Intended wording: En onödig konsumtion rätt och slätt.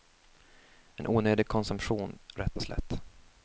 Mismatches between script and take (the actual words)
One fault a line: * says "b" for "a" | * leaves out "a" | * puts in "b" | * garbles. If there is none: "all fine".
all fine